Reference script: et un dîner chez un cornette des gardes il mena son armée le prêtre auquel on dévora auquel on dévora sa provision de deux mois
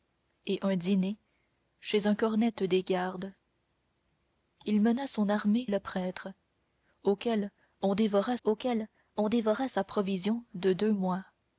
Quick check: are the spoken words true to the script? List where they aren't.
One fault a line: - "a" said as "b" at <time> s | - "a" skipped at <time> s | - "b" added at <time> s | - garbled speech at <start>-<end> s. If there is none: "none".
none